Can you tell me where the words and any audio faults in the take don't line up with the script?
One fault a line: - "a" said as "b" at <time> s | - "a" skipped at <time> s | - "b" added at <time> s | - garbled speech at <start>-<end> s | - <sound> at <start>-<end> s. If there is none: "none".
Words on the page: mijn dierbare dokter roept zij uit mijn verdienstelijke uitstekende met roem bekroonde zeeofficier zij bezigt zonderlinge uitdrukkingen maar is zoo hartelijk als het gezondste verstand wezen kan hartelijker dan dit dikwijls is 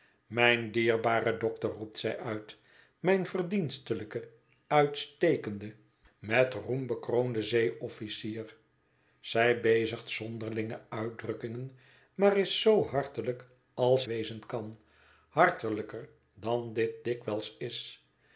- "het gezondste verstand" skipped at 14.1 s